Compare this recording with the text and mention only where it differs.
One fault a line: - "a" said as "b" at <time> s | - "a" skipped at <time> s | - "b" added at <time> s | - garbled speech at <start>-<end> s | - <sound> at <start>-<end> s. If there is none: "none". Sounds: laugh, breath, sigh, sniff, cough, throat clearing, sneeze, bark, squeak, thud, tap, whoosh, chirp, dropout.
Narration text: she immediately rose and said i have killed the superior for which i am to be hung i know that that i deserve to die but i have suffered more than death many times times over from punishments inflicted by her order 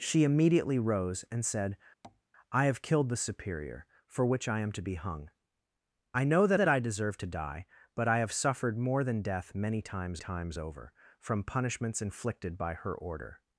- tap at 2.0-2.2 s